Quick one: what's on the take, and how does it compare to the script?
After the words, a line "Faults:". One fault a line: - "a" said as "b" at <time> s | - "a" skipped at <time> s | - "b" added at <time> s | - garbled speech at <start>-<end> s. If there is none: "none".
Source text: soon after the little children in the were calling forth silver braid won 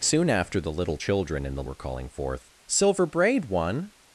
soon after the little children in the were calling forth silver braid won
Faults:
none